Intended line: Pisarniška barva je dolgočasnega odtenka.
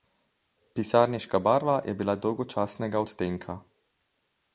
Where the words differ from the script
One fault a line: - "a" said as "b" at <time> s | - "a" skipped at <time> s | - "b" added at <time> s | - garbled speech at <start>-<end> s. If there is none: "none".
- "bila" added at 1.9 s